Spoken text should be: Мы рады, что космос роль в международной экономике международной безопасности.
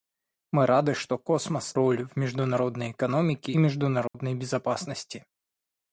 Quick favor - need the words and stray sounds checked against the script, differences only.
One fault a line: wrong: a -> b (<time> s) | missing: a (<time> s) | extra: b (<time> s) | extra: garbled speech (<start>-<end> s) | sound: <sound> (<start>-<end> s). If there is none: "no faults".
sound: dropout (4.1-4.1 s)